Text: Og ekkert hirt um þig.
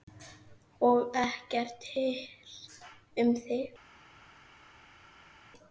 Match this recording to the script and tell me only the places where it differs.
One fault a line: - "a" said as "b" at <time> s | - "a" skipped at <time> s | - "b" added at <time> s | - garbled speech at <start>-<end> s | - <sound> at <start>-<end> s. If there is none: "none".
none